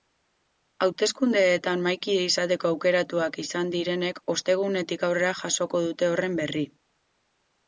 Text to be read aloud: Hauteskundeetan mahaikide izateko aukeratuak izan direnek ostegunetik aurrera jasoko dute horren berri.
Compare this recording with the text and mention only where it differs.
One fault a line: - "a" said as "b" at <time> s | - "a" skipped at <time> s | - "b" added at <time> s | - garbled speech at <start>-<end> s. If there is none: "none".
none